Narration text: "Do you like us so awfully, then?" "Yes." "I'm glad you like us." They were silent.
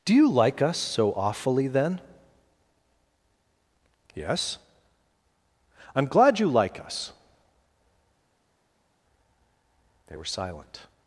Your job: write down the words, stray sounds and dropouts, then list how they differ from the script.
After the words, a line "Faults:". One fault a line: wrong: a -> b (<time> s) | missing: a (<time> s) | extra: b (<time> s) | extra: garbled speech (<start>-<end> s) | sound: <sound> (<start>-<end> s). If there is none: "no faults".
"Do you like us so awfully, then?" "Yes." "I'm glad you like us." They were silent.
Faults:
no faults